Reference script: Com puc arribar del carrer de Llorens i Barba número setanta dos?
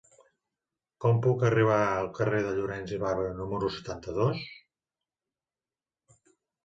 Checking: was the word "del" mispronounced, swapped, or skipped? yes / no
yes